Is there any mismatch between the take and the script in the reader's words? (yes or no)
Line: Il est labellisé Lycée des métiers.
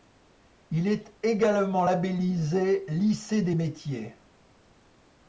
yes